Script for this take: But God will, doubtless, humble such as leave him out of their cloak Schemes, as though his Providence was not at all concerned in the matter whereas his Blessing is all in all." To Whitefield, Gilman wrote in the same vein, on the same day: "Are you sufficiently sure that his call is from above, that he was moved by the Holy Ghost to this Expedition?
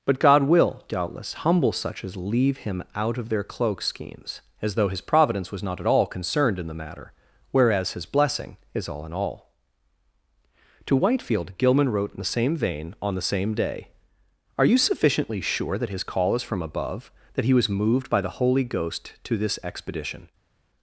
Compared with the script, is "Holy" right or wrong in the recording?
right